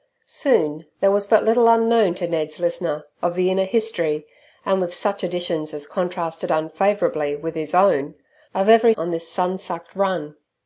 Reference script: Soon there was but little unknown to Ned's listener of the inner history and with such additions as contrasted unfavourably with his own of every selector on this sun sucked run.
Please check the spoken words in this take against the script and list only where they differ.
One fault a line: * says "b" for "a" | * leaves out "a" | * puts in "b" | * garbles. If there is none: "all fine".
* leaves out "selector"